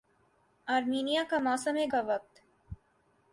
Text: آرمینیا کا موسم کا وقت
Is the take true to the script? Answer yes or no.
yes